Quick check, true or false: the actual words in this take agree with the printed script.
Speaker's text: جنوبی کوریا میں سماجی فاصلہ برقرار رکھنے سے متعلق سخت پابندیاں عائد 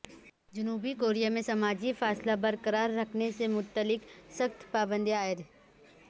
true